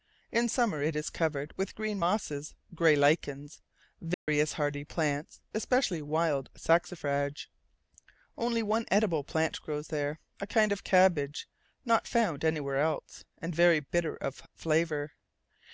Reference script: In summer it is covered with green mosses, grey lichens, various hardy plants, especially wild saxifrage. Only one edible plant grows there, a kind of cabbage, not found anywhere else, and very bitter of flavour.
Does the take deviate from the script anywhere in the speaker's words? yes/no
no